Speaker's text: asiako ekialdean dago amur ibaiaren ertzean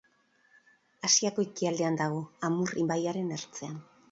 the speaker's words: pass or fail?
pass